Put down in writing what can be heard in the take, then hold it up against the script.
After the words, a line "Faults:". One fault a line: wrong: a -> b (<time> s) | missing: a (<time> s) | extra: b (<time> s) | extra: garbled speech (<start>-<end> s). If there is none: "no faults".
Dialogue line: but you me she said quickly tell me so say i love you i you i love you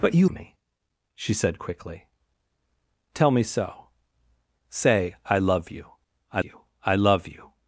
but you me she said quickly tell me so say i love you i you i love you
Faults:
no faults